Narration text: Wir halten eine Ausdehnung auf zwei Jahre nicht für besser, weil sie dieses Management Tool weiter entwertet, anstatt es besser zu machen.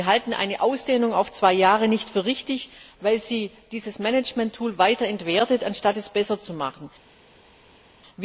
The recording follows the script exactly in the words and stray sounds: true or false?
false